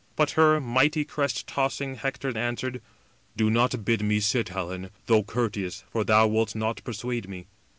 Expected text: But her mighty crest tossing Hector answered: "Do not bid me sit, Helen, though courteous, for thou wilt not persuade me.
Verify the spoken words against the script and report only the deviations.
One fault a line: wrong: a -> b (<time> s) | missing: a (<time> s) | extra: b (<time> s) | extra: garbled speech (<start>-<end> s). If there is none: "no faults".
no faults